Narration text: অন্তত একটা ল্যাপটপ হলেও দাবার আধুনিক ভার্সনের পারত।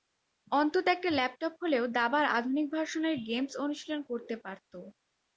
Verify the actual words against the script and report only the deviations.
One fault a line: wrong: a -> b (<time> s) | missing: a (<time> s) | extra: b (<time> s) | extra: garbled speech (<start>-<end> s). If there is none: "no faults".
extra: গেমস অনুশীলন করতে (3.3 s)